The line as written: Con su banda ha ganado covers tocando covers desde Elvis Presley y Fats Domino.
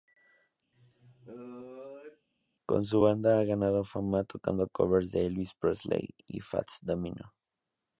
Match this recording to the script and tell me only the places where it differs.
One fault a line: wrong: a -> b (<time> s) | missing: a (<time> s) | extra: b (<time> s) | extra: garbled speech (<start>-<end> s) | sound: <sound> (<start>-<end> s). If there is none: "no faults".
sound: sneeze (0.7-2.3 s)
wrong: covers -> fama (3.8 s)
wrong: desde -> de (5.1 s)